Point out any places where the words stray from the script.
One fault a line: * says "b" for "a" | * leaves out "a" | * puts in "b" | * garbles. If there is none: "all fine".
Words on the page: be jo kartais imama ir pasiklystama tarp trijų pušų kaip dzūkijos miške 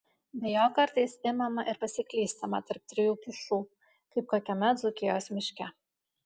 * puts in "kokiame"